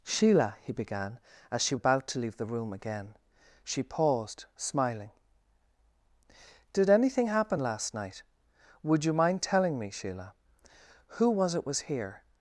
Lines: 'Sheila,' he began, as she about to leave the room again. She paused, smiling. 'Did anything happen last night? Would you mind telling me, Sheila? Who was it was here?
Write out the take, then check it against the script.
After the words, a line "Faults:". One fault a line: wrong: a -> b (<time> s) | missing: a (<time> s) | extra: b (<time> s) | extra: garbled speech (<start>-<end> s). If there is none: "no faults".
'Sheila,' he began, as she about to leave the room again. She paused, smiling. 'Did anything happen last night? Would you mind telling me, Sheila? Who was it was here?
Faults:
no faults